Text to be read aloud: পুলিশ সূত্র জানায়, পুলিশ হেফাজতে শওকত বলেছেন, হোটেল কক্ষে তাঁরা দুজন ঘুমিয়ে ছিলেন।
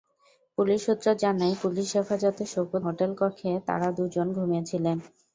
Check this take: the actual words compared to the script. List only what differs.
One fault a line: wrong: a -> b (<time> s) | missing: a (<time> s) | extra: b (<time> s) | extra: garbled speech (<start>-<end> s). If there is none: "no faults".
missing: বলেছেন (2.8 s)